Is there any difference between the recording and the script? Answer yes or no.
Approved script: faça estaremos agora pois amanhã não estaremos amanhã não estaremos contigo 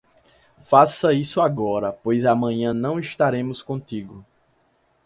yes